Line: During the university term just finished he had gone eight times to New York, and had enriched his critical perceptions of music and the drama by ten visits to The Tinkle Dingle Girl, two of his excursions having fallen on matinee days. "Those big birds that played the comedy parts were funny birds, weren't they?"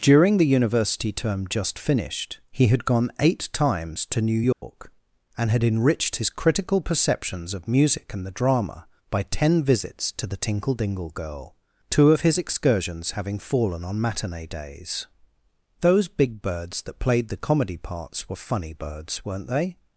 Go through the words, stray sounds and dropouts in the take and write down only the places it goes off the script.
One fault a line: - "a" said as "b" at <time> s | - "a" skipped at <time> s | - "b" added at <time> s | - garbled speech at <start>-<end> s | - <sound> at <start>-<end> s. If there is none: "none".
- dropout at 4.5-4.6 s